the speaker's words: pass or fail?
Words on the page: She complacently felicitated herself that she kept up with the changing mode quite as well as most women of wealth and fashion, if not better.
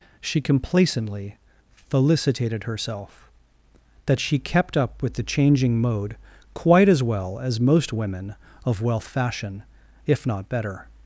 fail